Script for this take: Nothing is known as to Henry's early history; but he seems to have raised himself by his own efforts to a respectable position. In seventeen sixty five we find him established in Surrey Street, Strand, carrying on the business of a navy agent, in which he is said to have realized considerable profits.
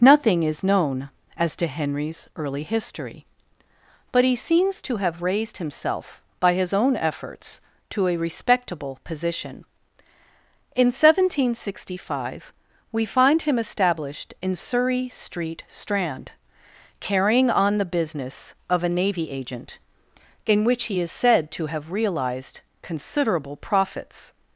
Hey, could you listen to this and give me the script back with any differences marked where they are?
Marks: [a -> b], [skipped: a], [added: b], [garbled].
Nothing is known as to Henry's early history; but he seems to have raised himself by his own efforts to a respectable position. In seventeen sixty five we find him established in Surrey Street, Strand, carrying on the business of a navy agent, in which he is said to have realized considerable profits.